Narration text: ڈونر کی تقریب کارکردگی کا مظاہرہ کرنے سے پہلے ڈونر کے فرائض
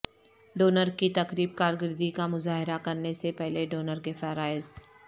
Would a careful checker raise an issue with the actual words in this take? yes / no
no